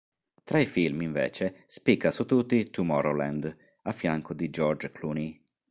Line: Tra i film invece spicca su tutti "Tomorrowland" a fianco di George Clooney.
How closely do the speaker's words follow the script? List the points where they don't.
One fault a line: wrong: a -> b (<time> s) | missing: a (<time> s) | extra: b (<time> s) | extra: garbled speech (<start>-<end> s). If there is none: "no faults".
no faults